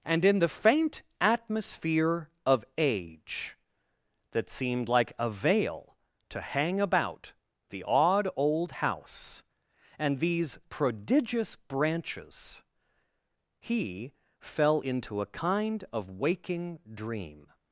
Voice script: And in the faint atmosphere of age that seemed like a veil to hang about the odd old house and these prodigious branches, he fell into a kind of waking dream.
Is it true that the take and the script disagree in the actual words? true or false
false